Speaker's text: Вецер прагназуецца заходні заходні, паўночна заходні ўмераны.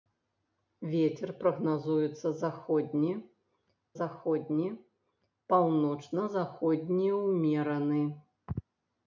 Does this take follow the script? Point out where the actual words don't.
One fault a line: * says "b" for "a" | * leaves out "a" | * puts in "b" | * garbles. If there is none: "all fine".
all fine